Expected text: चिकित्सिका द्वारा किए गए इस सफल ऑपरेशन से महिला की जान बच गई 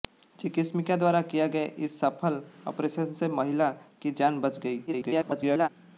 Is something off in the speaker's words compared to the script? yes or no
yes